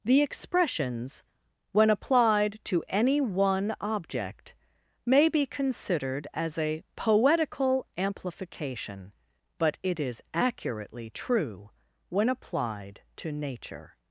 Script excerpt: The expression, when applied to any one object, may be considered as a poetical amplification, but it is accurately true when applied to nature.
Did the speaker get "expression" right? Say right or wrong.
wrong